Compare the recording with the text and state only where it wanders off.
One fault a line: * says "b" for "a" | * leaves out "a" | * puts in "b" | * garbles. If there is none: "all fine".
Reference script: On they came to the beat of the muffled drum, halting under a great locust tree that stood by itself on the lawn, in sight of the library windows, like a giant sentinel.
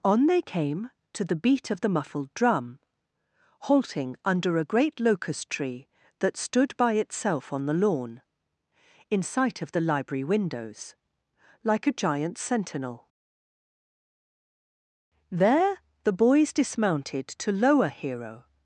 * puts in "There the boys dismounted to lower Hero"